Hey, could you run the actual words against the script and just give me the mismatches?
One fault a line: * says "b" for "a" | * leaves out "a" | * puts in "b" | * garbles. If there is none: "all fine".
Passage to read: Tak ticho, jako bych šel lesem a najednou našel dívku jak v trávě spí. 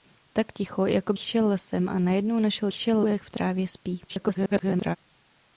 * leaves out "bych"
* says "šel" for "dívku"
* garbles